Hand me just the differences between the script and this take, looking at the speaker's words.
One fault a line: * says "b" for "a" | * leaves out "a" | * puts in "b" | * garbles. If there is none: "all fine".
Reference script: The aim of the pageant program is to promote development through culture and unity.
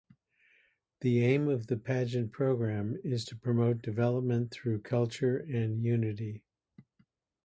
all fine